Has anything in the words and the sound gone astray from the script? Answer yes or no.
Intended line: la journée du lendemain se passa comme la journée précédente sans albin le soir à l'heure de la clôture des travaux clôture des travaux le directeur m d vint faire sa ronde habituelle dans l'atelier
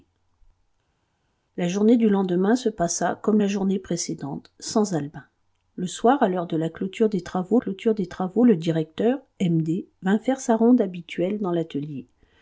no